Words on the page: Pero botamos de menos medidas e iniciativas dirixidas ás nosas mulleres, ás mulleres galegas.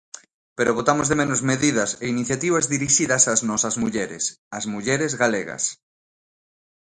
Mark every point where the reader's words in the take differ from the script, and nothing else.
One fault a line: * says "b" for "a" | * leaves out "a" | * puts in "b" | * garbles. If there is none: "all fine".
all fine